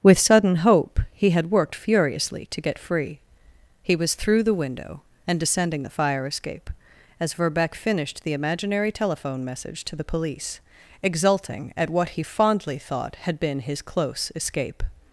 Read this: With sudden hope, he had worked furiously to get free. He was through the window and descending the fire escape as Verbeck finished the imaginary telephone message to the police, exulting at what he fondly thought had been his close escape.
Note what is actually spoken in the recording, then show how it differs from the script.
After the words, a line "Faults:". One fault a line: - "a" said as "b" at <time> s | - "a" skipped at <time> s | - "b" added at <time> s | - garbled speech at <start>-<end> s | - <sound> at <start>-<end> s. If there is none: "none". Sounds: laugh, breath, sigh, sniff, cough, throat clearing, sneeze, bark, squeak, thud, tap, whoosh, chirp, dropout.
With sudden hope, he had worked furiously to get free. He was through the window and descending the fire escape as Verbeck finished the imaginary telephone message to the police, exulting at what he fondly thought had been his close escape.
Faults:
none